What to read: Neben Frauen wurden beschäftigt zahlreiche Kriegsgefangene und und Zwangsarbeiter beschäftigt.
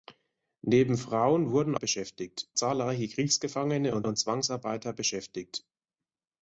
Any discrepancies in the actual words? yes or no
no